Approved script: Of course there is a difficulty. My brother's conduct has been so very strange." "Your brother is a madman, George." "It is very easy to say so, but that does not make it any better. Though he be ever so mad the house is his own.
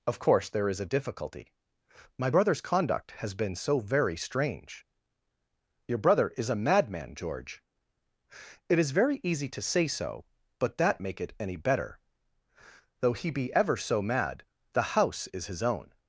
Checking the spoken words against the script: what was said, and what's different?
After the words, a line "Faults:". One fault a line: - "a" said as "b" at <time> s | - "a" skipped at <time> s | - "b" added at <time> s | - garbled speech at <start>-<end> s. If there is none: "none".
Of course there is a difficulty. My brother's conduct has been so very strange." "Your brother is a madman, George." "It is very easy to say so, but that make it any better. Though he be ever so mad the house is his own.
Faults:
- "does not" skipped at 11.0 s